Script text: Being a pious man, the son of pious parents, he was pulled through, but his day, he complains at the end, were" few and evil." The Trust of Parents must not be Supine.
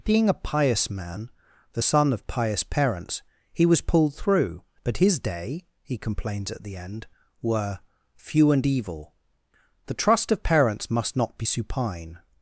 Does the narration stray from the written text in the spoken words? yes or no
no